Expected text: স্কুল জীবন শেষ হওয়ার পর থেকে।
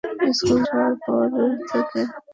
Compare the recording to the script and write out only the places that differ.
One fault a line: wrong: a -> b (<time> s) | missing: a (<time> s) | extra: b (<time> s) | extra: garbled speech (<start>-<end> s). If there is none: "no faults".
missing: জীবন শেষ (0.6 s)